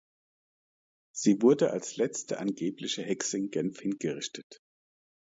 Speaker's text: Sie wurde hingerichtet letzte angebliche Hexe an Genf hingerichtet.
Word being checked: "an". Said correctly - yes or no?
no